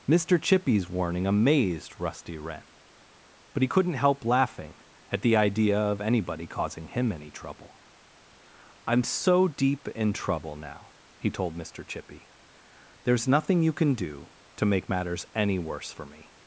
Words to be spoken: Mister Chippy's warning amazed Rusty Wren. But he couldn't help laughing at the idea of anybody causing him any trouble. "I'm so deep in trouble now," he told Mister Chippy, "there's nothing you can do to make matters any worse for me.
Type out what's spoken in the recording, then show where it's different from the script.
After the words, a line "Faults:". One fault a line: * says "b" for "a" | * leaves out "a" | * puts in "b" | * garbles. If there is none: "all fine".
Mister Chippy's warning amazed Rusty Wren. But he couldn't help laughing at the idea of anybody causing him any trouble. "I'm so deep in trouble now," he told Mister Chippy, "there's nothing you can do to make matters any worse for me.
Faults:
all fine